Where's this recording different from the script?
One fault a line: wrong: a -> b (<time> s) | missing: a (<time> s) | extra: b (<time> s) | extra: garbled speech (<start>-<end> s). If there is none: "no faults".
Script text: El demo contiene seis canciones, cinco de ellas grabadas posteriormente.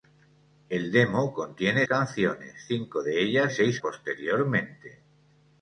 missing: seis (1.9 s)
wrong: grabadas -> seis (3.5 s)